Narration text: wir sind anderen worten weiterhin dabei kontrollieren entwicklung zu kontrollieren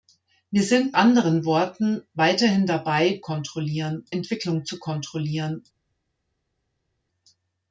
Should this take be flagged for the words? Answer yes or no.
no